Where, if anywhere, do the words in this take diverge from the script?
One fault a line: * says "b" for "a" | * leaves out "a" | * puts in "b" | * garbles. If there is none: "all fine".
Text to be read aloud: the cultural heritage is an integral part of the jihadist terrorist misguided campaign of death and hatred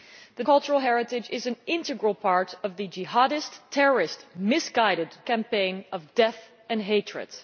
all fine